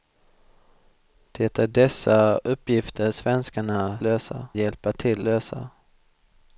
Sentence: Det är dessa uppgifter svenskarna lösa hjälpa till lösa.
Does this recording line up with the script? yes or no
yes